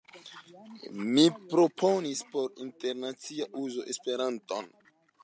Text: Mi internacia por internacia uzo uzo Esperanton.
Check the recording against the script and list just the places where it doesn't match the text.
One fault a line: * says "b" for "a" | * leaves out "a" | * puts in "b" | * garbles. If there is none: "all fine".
* says "proponis" for "internacia"
* leaves out "uzo"